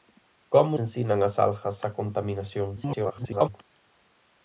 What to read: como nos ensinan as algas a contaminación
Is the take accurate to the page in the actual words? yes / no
no